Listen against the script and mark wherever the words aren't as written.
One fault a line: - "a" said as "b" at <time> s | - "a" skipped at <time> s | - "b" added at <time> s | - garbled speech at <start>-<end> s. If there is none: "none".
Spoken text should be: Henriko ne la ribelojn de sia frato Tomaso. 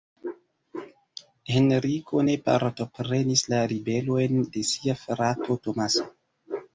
- "partoprenis" added at 2.5 s